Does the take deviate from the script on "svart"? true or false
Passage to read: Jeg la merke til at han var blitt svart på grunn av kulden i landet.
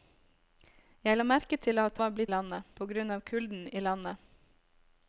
true